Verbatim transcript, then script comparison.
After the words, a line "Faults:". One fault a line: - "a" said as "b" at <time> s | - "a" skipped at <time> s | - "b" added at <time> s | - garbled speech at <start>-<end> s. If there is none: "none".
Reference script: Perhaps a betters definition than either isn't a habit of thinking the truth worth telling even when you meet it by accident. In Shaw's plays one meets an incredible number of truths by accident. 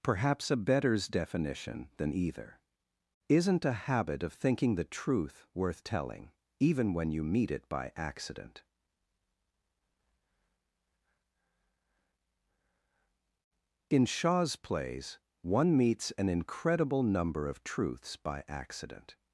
Perhaps a betters definition than either isn't a habit of thinking the truth worth telling even when you meet it by accident. In Shaw's plays one meets an incredible number of truths by accident.
Faults:
none